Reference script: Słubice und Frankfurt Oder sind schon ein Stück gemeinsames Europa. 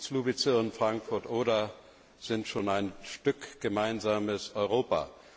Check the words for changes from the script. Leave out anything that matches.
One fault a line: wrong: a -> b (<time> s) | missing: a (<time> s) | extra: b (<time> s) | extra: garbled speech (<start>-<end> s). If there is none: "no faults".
no faults